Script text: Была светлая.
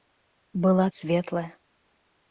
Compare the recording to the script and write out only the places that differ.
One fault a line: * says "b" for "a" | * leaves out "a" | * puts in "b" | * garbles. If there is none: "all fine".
all fine